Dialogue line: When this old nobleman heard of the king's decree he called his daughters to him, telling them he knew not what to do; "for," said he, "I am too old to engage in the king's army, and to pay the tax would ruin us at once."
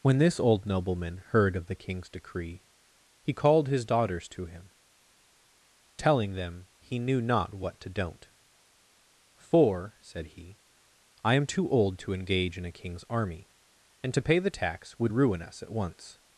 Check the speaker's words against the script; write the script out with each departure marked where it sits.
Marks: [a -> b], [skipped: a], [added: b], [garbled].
When this old nobleman heard of the king's decree he called his daughters to him, telling them he knew not what to [do; -> don't] "for," said he, "I am too old to engage in [the -> a] king's army, and to pay the tax would ruin us at once."